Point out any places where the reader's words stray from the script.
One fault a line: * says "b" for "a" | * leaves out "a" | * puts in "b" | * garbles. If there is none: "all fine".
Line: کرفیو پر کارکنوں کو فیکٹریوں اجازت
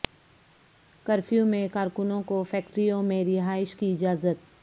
* says "میں" for "پر"
* puts in "میں رہائش کی"